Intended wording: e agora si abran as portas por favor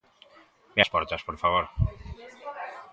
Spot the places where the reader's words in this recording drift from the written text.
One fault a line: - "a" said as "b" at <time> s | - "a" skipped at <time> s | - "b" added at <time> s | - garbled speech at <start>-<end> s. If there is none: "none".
- "agora si abran" skipped at 0.8 s